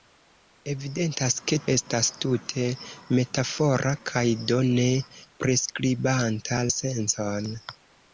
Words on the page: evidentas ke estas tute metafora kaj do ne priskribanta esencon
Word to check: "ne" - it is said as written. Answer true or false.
true